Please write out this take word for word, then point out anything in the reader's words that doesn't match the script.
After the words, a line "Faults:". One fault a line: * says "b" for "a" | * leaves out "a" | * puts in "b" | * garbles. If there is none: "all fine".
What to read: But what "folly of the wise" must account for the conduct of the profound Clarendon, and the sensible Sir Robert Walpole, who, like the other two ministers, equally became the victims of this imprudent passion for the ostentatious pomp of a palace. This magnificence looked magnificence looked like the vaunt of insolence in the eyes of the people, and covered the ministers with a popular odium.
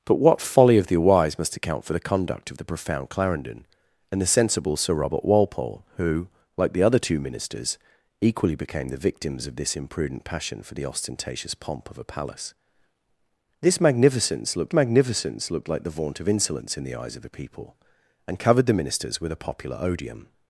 But what "folly of the wise" must account for the conduct of the profound Clarendon, and the sensible Sir Robert Walpole, who, like the other two ministers, equally became the victims of this imprudent passion for the ostentatious pomp of a palace. This magnificence looked magnificence looked like the vaunt of insolence in the eyes of the people, and covered the ministers with a popular odium.
Faults:
all fine